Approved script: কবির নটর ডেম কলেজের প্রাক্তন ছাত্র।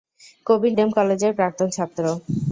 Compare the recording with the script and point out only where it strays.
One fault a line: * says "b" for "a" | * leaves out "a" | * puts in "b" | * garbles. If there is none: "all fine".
* leaves out "নটর"